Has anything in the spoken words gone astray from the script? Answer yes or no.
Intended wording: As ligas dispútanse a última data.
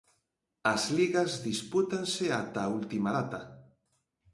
yes